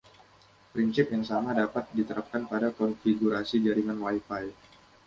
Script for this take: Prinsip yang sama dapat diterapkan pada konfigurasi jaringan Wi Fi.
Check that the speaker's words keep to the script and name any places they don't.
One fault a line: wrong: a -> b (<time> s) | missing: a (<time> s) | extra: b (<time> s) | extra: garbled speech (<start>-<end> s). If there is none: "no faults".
no faults